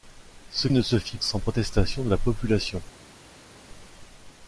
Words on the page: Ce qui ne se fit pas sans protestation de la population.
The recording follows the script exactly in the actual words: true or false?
false